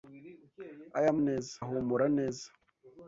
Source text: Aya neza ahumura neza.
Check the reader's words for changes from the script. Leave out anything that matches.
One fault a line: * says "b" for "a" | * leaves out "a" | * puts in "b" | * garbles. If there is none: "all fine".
all fine